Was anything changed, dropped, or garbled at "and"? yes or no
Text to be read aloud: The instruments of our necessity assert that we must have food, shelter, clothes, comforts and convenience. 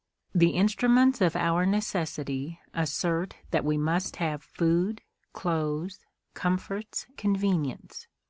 yes